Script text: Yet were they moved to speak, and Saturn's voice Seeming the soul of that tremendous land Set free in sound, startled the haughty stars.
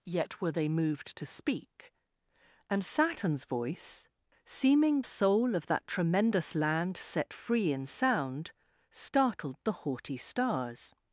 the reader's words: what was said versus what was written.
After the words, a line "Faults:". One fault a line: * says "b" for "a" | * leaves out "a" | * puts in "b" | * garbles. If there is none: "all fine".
Yet were they moved to speak, and Saturn's voice Seeming soul of that tremendous land Set free in sound, startled the haughty stars.
Faults:
* leaves out "the"